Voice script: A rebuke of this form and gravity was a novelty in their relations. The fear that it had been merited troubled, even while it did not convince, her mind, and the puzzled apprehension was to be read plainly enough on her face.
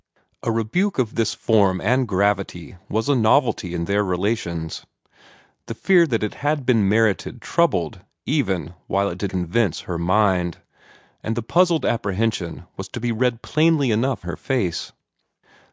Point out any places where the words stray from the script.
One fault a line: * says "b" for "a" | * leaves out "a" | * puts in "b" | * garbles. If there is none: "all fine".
* leaves out "not"
* leaves out "on"